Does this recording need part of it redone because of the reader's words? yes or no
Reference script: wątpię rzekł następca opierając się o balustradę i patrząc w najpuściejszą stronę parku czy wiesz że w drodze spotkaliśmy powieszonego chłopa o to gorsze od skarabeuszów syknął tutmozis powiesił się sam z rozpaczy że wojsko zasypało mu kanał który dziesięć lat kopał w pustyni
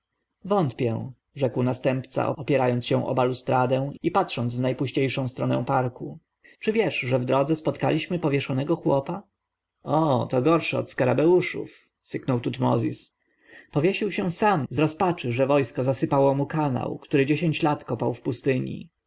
no